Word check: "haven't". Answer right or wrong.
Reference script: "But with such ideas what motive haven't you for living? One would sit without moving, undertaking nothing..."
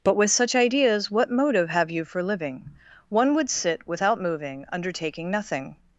wrong